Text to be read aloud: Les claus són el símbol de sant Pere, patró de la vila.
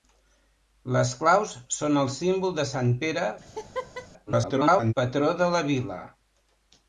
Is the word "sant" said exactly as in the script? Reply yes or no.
yes